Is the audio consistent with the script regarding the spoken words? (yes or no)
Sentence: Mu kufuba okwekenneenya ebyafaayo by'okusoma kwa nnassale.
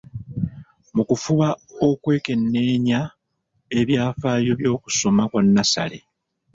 yes